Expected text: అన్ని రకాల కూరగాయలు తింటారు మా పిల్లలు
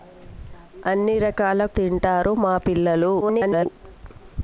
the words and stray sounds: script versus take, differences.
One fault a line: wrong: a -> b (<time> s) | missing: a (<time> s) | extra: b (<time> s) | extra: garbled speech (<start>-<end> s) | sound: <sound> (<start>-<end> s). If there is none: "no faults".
missing: కూరగాయలు (1.6 s)
extra: garbled speech (3.2-3.7 s)